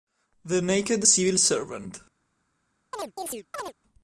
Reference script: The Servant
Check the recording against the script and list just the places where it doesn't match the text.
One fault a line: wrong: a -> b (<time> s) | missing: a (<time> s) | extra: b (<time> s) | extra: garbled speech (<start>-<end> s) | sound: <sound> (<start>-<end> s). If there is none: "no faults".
extra: Naked Civil (0.6 s)
sound: chirp (2.9-3.7 s)